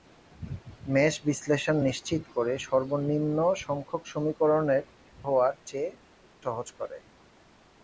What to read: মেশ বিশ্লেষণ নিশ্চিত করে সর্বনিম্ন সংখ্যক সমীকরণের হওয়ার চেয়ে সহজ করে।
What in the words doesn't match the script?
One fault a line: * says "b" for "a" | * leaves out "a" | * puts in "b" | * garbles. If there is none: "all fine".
all fine